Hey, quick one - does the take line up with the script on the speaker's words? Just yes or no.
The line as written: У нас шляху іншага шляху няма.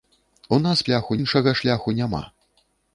yes